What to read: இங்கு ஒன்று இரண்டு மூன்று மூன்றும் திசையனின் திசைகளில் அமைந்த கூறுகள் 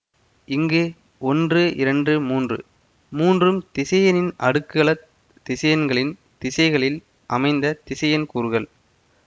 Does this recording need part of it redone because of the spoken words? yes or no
yes